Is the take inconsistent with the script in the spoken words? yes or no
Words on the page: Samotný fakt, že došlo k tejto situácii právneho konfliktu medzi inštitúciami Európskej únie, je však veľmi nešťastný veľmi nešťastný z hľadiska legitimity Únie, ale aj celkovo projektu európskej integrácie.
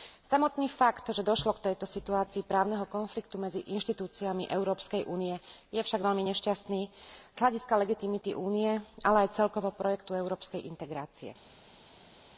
yes